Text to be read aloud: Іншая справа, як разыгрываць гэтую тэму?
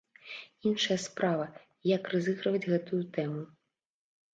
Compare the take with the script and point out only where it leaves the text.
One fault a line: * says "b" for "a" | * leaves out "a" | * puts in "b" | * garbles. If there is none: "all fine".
all fine